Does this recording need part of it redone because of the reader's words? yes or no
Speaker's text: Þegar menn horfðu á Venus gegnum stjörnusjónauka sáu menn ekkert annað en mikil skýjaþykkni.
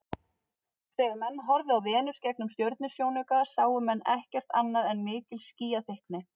no